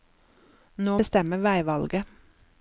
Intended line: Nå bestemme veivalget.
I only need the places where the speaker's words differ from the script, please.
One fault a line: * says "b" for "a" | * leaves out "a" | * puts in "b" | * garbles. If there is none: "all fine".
all fine